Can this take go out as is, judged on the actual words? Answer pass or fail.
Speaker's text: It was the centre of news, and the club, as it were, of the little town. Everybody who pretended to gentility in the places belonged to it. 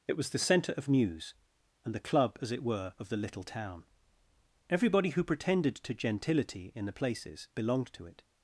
pass